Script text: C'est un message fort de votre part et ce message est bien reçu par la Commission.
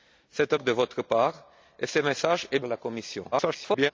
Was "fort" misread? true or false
true